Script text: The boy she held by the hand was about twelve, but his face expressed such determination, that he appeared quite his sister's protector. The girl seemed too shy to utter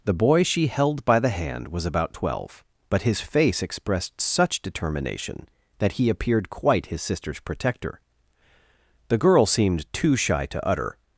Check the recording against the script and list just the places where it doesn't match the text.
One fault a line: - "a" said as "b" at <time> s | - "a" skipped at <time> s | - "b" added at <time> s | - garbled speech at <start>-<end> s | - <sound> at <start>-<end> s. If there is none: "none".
none